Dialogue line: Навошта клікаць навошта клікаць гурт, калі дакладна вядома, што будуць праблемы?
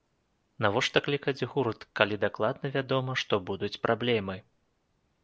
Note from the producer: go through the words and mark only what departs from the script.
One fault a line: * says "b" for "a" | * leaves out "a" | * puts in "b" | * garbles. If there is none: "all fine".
* leaves out "навошта клікаць"